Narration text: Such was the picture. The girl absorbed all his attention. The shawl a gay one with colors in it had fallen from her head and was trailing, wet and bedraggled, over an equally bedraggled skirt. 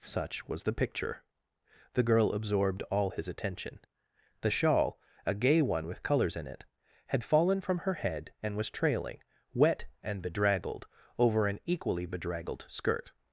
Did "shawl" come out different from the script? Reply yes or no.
no